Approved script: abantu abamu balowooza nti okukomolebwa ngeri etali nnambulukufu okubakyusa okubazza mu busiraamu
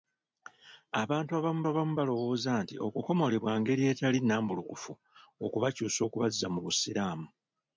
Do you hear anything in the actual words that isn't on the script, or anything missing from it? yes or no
yes